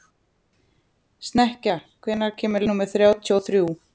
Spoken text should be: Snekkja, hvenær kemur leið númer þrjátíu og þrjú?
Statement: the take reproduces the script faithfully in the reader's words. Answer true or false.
false